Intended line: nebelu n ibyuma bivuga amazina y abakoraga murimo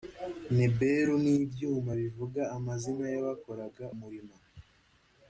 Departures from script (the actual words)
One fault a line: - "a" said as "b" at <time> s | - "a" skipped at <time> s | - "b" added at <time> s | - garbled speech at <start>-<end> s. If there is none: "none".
none